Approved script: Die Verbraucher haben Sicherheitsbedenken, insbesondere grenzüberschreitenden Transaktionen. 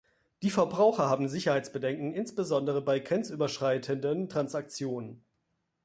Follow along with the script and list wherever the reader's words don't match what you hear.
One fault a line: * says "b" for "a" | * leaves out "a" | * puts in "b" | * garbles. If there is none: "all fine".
* puts in "bei"